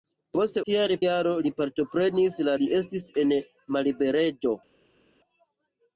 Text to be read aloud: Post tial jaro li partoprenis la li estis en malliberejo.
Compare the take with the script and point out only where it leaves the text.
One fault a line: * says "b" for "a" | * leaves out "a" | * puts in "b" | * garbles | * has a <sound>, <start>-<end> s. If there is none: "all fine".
all fine